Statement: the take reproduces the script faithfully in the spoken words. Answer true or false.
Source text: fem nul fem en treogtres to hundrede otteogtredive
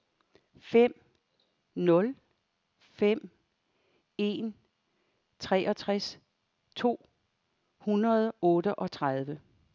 true